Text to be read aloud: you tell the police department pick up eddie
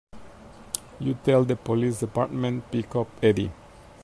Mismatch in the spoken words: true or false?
false